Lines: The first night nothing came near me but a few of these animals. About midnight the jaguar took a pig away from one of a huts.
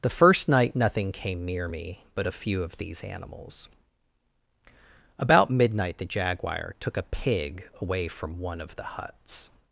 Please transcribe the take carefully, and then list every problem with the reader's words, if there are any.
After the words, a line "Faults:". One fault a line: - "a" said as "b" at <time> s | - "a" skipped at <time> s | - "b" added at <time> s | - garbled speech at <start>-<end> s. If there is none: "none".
The first night nothing came near me but a few of these animals. About midnight the jaguar took a pig away from one of the huts.
Faults:
- "a" said as "the" at 8.8 s